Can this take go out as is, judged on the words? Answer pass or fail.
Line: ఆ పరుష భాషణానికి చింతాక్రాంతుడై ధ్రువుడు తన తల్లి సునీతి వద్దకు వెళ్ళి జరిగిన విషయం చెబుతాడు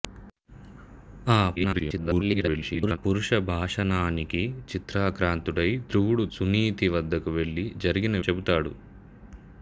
fail